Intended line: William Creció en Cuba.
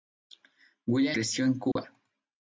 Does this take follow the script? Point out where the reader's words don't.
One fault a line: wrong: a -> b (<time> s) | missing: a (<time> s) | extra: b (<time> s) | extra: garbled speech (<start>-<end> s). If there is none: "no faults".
no faults